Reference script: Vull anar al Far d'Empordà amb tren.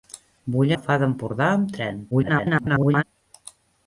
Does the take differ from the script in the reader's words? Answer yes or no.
yes